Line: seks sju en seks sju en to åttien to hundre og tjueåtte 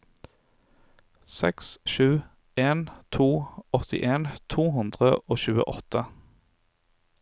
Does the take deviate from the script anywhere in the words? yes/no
yes